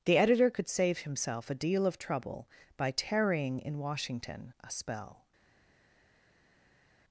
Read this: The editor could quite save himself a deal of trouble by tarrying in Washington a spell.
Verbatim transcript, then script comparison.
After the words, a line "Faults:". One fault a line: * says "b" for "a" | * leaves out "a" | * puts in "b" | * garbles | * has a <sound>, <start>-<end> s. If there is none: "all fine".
The editor could save himself a deal of trouble by tarrying in Washington a spell.
Faults:
* leaves out "quite"